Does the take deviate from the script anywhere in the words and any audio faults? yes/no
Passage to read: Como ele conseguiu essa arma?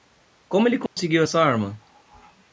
yes